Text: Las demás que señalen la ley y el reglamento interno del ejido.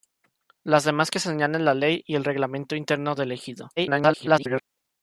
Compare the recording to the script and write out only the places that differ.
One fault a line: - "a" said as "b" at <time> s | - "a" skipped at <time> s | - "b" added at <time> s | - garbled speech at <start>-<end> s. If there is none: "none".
- garbled speech at 3.8-4.6 s